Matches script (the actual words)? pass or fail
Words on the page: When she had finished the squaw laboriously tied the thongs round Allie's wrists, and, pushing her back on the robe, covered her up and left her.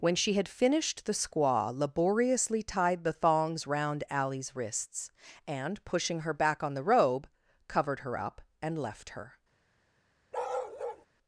pass